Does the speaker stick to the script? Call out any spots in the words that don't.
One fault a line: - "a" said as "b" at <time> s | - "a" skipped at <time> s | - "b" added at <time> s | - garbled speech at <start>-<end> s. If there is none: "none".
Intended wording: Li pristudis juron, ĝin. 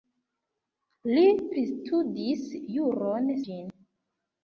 none